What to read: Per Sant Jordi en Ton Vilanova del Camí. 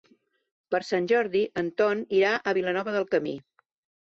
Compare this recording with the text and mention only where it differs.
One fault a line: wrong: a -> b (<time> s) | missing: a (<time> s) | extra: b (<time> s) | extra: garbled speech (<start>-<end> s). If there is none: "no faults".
extra: irà a (2.2 s)